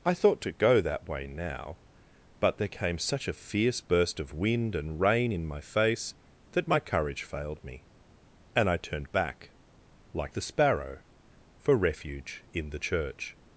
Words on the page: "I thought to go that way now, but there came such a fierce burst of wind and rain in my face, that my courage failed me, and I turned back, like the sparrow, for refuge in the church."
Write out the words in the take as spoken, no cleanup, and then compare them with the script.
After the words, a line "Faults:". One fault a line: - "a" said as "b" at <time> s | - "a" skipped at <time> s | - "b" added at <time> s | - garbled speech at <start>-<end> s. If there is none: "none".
"I thought to go that way now, but there came such a fierce burst of wind and rain in my face, that my courage failed me, and I turned back, like the sparrow, for refuge in the church."
Faults:
none